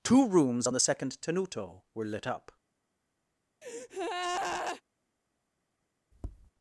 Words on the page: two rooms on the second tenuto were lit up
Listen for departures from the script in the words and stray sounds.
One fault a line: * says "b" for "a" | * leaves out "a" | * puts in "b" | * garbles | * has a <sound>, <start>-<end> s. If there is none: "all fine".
* has a breath, 3.6-4.8 s
* has a tap, 6.1-6.5 s